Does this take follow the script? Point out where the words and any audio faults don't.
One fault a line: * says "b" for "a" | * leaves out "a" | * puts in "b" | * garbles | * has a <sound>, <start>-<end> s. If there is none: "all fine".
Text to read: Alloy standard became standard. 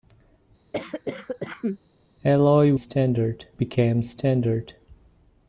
* has a cough, 0.7-1.8 s